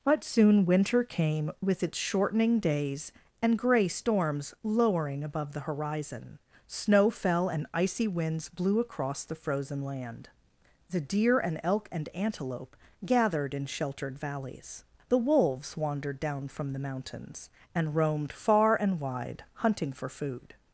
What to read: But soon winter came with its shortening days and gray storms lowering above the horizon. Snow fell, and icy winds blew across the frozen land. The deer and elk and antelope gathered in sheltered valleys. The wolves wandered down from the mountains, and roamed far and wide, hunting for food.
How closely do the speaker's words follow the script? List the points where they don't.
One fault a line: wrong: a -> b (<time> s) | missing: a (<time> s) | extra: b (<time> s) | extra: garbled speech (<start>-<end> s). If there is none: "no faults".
no faults